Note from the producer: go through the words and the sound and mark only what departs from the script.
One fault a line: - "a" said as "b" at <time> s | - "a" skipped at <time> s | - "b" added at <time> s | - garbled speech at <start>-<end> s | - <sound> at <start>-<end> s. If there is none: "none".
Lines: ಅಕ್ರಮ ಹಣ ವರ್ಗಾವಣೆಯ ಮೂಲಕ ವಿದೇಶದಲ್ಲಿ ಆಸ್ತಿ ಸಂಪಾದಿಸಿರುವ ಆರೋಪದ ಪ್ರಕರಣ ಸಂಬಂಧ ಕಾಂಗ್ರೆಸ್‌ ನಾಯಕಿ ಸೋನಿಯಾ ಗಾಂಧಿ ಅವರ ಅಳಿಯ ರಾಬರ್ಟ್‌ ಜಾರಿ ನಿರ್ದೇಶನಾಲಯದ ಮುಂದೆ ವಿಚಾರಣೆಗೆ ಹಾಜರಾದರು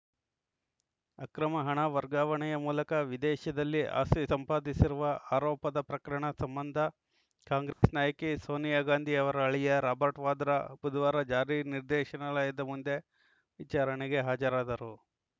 - dropout at 7.7-7.8 s
- "ವಾದ್ರಾ ಬುಧವಾರ" added at 10.3 s